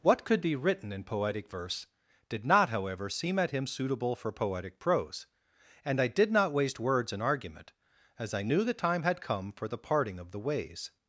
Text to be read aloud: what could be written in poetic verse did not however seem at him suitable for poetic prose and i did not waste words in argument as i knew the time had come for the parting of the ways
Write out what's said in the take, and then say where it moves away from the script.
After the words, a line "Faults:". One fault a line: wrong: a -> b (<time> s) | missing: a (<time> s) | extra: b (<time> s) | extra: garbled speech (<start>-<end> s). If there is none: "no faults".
what could be written in poetic verse did not however seem at him suitable for poetic prose and i did not waste words in argument as i knew the time had come for the parting of the ways
Faults:
no faults